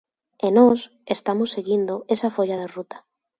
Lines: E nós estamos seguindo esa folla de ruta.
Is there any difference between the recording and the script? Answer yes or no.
no